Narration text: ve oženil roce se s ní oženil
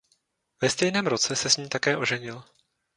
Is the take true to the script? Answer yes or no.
no